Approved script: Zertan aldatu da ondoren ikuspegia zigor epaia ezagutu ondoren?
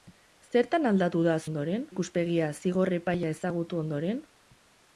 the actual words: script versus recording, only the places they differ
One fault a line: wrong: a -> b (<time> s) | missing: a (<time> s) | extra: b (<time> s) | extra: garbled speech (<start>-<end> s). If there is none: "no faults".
no faults